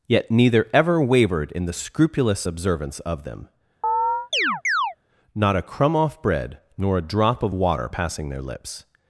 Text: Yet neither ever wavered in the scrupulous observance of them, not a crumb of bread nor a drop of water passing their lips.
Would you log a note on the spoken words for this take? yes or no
yes